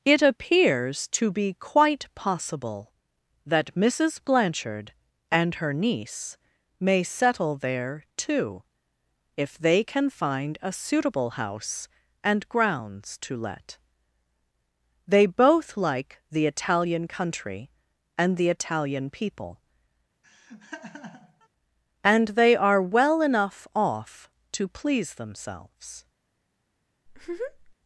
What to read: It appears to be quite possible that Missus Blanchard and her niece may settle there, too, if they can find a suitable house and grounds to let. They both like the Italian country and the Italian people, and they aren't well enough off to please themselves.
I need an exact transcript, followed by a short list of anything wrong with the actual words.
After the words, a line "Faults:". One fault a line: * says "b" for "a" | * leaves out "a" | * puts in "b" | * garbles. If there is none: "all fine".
It appears to be quite possible that Missus Blanchard and her niece may settle there, too, if they can find a suitable house and grounds to let. They both like the Italian country and the Italian people, and they are well enough off to please themselves.
Faults:
* says "are" for "aren't"